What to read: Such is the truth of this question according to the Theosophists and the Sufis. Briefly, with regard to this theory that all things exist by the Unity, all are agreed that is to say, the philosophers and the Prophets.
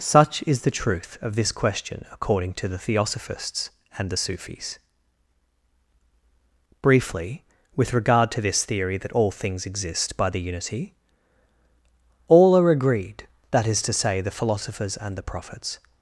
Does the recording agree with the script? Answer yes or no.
yes